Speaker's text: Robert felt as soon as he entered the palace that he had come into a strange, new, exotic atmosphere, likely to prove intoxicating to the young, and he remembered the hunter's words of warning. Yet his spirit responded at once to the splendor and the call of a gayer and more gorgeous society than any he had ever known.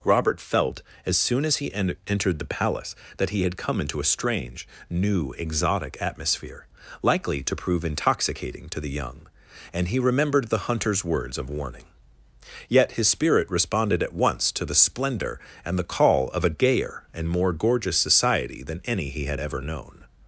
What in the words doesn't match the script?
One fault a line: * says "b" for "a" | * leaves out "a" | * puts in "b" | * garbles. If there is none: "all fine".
* puts in "en"